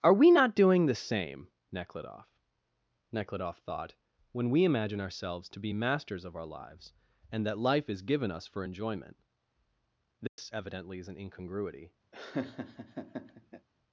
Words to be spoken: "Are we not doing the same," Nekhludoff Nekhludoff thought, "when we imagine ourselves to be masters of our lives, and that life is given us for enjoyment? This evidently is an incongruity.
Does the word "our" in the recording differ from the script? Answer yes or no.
no